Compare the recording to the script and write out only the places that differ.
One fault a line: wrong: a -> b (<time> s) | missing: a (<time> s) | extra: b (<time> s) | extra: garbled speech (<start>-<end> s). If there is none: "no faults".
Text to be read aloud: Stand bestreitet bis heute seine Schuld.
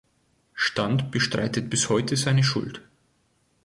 no faults